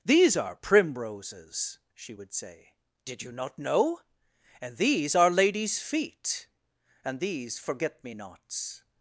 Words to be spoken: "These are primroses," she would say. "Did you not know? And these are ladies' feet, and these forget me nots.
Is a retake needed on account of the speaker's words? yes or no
no